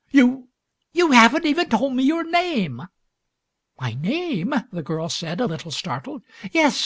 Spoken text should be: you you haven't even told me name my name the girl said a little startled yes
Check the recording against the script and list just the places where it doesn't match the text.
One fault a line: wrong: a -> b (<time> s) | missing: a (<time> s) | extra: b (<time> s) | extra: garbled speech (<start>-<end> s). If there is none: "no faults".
extra: your (2.0 s)